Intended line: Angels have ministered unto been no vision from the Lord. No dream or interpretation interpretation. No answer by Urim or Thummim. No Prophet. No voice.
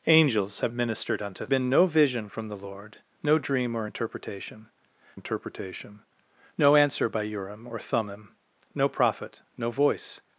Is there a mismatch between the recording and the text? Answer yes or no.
no